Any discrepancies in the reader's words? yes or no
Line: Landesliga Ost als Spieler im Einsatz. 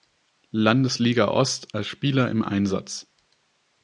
no